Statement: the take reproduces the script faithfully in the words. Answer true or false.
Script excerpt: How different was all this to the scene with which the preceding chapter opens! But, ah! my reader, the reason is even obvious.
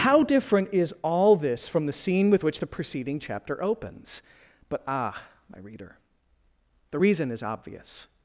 false